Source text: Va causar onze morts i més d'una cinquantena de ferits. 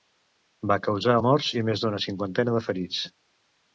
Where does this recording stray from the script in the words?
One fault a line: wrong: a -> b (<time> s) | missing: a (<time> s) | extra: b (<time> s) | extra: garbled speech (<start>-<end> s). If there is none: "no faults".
missing: onze (1.2 s)